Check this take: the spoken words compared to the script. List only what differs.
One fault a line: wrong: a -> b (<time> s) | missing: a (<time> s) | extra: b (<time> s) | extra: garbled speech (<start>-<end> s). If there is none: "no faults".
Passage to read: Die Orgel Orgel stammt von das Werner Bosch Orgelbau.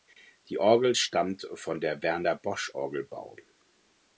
missing: Orgel (1.0 s)
wrong: das -> der (1.8 s)